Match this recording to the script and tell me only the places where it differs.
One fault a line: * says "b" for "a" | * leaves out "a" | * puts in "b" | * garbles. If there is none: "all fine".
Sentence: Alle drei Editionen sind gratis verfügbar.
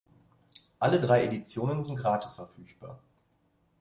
all fine